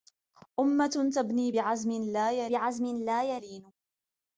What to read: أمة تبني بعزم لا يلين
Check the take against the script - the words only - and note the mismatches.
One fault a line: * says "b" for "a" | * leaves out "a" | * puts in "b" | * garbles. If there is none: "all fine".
* puts in "بعزم لا"